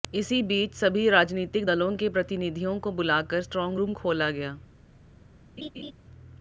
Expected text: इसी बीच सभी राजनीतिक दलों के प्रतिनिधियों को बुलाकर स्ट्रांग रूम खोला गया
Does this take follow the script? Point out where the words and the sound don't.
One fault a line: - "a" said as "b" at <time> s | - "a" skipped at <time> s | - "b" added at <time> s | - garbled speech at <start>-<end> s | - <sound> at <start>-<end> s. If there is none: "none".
- laugh at 5.6-5.9 s